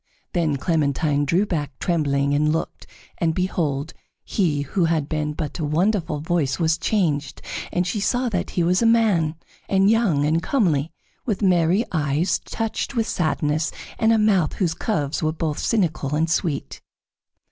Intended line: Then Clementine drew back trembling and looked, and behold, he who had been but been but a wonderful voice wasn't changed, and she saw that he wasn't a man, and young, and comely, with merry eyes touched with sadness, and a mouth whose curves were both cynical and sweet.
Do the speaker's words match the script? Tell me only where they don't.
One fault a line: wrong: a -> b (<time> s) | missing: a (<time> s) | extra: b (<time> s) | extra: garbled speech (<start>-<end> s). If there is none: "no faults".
missing: been but (5.6 s)
wrong: wasn't -> was (6.6 s)
wrong: wasn't -> was (8.6 s)